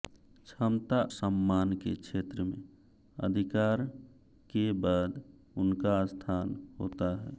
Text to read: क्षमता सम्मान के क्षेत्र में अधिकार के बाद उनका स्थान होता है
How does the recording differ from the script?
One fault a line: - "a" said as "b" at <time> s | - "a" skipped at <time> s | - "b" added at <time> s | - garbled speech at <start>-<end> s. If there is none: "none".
none